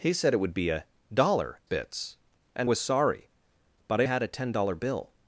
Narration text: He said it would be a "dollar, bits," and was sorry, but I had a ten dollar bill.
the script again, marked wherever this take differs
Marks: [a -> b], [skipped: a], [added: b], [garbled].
He said it would be a "dollar, bits," and was sorry, but I had a ten dollar bill.